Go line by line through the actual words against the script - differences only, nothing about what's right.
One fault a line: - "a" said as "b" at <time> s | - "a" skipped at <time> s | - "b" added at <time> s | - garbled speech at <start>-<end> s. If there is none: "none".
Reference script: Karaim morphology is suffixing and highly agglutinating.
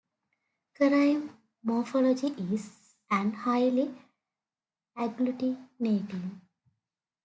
- "suffixing" skipped at 3.0 s